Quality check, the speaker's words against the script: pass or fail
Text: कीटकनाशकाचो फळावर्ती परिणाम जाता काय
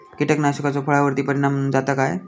pass